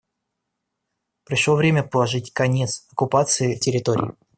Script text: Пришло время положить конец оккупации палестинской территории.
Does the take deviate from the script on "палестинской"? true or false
true